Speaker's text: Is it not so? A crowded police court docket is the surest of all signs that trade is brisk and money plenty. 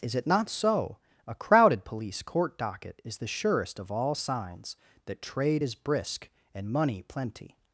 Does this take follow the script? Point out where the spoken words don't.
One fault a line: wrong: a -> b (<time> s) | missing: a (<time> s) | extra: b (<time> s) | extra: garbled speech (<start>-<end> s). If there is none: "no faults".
no faults